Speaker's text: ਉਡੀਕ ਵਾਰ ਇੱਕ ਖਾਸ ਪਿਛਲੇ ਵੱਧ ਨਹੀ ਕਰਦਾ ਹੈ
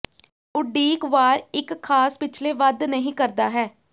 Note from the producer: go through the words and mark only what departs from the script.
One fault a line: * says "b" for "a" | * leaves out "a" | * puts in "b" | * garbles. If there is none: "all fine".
all fine